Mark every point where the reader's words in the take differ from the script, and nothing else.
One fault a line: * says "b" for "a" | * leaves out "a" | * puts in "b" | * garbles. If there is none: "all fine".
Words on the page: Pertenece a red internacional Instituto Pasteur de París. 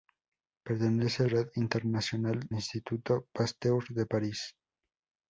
all fine